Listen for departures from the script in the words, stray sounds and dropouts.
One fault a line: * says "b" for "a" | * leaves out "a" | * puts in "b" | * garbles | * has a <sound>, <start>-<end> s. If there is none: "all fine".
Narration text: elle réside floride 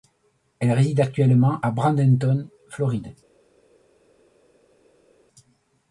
* puts in "actuellement à bradenton"